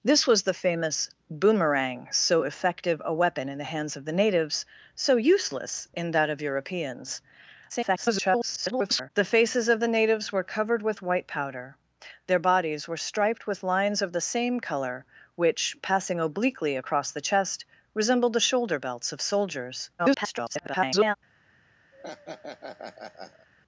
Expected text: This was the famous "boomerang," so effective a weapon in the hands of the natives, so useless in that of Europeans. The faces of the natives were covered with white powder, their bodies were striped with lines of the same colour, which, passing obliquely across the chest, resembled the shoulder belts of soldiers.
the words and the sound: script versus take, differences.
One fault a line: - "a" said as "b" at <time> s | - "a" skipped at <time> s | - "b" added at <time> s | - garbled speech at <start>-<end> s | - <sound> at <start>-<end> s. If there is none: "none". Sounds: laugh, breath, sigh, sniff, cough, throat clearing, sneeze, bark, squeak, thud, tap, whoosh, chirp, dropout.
- garbled speech at 7.7-9.1 s
- garbled speech at 20.0-21.2 s
- laugh at 21.9-23.5 s